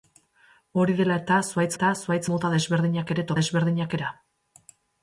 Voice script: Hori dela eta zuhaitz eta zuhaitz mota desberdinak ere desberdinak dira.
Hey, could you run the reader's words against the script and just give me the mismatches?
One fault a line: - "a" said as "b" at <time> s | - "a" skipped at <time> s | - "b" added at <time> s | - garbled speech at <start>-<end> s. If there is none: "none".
none